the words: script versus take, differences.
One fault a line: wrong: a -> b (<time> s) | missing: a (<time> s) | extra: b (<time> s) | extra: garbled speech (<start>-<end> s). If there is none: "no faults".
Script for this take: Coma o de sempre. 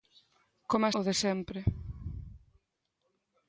no faults